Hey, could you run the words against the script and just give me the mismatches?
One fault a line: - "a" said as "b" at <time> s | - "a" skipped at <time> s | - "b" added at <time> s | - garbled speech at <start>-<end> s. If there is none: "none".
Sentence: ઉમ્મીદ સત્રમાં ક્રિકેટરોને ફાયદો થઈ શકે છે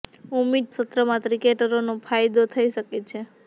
none